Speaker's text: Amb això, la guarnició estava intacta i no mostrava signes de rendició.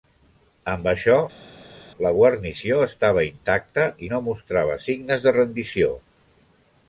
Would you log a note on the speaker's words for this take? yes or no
no